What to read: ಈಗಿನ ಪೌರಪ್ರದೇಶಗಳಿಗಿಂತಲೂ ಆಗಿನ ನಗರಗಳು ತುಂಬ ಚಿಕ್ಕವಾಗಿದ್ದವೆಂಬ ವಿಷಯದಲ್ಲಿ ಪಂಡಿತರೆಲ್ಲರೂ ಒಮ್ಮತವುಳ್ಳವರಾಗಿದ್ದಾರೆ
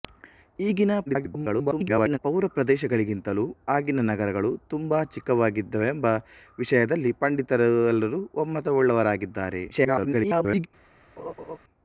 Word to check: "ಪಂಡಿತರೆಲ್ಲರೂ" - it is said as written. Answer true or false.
true